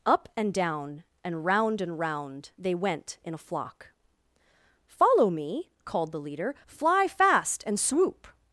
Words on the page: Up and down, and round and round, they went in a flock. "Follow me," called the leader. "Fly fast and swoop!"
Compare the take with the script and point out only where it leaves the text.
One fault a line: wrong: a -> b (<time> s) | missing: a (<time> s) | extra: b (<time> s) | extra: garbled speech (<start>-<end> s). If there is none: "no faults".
no faults